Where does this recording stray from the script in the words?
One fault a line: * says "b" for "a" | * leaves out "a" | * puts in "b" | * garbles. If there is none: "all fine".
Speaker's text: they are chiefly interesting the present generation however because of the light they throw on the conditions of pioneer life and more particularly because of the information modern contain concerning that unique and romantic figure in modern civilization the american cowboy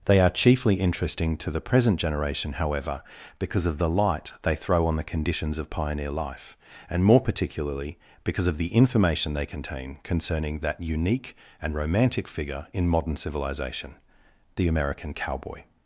* puts in "to"
* says "they" for "modern"